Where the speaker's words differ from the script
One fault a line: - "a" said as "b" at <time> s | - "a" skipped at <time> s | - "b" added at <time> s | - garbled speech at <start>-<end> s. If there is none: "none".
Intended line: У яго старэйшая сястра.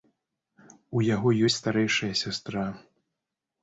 - "ёсць" added at 1.5 s